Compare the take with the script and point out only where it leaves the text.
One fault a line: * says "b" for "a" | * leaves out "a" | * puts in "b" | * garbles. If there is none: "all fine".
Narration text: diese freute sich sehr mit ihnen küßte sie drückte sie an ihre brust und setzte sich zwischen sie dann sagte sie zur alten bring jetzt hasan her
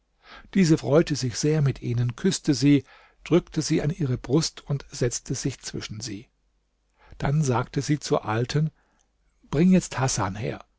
all fine